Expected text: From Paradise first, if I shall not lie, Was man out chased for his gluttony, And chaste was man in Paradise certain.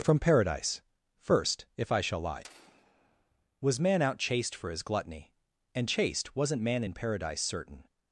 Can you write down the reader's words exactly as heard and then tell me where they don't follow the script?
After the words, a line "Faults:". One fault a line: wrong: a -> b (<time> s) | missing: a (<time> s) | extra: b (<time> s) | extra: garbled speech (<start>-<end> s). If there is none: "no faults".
From Paradise first, if I shall lie, Was man out chased for his gluttony, And chaste wasn't man in Paradise certain.
Faults:
missing: not (2.2 s)
wrong: was -> wasn't (6.3 s)